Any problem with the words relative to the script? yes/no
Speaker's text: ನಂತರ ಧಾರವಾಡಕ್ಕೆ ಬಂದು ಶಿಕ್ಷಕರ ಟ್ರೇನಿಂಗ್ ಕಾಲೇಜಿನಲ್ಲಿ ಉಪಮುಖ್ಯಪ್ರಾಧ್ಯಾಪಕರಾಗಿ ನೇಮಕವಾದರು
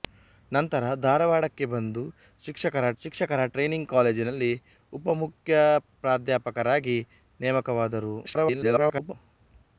yes